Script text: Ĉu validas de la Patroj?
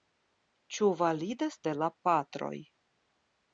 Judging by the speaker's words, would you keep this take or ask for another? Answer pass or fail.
pass